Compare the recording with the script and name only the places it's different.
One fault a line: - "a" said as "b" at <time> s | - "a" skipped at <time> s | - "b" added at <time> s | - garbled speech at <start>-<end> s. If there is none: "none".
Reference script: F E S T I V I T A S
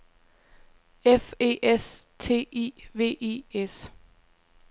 - "T A" skipped at 3.4 s